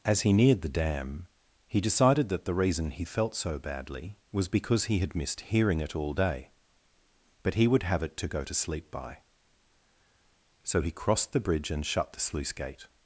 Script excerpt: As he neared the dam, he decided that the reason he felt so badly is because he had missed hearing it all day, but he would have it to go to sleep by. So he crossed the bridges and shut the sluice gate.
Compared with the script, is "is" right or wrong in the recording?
wrong